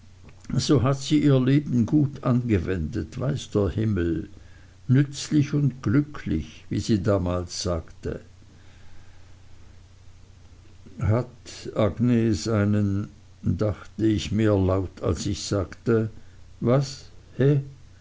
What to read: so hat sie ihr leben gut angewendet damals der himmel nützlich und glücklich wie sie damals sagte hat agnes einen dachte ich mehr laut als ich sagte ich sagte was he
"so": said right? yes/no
yes